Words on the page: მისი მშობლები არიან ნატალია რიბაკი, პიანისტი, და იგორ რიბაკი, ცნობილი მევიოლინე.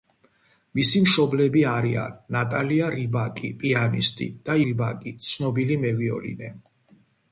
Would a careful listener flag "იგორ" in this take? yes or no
yes